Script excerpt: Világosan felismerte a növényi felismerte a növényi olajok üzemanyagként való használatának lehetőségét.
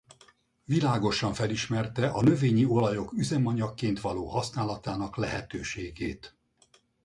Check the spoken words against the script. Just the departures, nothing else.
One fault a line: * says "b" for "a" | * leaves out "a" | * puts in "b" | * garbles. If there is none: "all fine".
* leaves out "felismerte a növényi"